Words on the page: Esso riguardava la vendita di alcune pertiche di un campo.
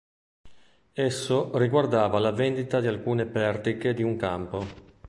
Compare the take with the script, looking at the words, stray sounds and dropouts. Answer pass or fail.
pass